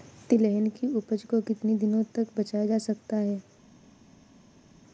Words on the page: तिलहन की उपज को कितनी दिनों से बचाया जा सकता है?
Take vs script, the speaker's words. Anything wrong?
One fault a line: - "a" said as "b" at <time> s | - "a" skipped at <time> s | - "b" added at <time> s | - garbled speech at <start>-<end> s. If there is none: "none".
- "से" said as "तक" at 2.0 s